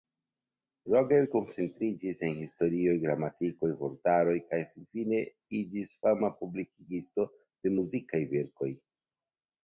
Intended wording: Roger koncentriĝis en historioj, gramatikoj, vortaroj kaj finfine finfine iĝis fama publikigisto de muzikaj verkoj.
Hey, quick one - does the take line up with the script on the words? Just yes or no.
no